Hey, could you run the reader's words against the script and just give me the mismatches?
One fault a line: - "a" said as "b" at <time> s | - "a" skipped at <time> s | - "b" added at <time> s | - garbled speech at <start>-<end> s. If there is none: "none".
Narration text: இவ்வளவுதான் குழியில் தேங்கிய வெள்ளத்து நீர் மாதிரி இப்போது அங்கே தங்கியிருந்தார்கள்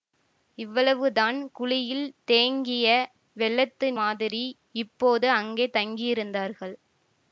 - "நீர்" skipped at 3.9 s